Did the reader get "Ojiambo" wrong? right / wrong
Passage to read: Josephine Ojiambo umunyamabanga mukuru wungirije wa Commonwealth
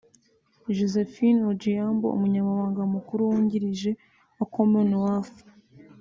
right